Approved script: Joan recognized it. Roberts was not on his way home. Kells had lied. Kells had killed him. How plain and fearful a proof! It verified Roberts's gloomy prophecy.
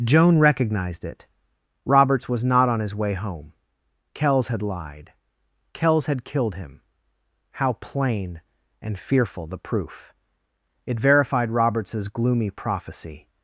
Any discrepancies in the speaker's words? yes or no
yes